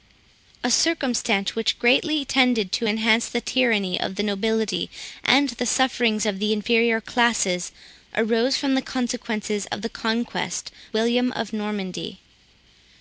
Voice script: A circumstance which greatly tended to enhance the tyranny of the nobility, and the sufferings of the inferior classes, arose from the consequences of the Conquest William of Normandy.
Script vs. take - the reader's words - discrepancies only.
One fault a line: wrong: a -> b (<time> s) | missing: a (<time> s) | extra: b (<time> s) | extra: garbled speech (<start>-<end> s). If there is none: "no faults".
no faults